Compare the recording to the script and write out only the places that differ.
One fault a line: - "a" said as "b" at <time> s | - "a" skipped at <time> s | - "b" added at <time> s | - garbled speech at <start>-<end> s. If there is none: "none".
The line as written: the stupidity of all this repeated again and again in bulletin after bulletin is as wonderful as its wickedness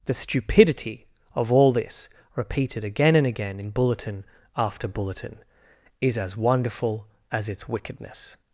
none